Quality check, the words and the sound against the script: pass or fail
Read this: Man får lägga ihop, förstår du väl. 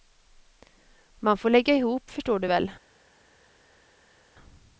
pass